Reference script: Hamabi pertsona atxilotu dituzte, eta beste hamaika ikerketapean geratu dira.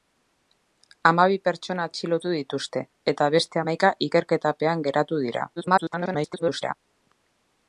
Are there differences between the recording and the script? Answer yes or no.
yes